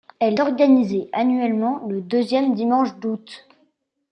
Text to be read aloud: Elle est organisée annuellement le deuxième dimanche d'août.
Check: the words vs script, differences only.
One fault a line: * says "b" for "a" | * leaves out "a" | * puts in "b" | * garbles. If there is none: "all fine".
* leaves out "est"